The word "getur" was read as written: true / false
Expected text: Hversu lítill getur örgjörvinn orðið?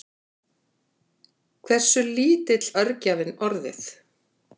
false